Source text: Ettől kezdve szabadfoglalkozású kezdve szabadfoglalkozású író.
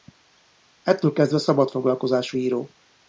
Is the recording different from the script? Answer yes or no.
yes